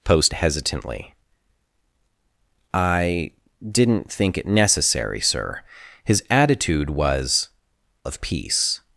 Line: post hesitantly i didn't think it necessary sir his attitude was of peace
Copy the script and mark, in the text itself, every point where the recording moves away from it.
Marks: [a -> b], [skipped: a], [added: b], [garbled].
post hesitantly i didn't think it necessary sir his attitude was of peace